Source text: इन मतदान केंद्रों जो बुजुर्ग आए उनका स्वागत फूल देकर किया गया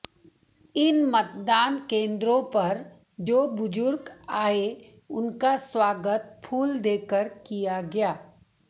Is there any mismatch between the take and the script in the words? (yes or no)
yes